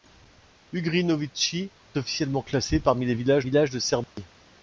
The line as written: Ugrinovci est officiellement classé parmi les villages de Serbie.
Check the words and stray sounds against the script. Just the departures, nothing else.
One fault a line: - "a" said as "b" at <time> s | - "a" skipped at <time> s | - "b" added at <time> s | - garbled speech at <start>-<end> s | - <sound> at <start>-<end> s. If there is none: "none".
- "est" skipped at 1.7 s
- "villages" added at 3.4 s
- dropout at 4.0-4.2 s